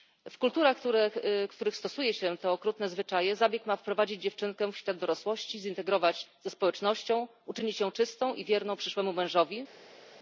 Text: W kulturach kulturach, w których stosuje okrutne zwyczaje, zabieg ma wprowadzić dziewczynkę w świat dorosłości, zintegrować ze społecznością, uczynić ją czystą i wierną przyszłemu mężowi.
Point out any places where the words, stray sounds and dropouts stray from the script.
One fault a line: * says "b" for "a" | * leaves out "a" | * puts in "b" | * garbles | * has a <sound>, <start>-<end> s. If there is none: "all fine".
* leaves out "kulturach"
* puts in "się te"